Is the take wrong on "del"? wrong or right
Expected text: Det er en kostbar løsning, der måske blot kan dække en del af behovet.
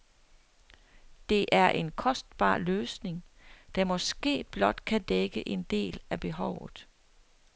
right